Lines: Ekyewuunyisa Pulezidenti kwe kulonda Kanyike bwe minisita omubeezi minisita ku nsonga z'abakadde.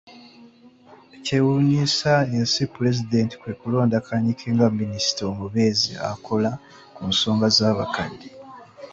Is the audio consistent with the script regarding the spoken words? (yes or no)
no